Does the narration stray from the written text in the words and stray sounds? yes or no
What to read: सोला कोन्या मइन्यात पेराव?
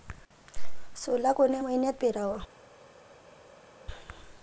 no